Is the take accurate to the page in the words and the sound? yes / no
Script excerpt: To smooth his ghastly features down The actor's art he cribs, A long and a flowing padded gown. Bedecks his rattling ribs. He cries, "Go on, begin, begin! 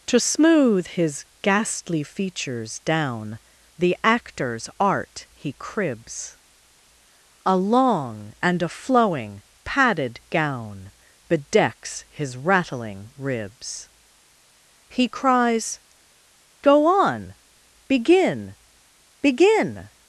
yes